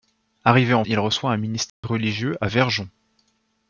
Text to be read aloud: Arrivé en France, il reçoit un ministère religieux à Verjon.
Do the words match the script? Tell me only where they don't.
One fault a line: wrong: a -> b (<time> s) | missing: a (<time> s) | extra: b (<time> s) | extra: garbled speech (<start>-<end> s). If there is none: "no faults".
missing: France (0.8 s)